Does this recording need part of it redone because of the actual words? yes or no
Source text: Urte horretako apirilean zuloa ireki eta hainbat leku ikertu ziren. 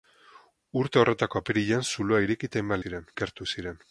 yes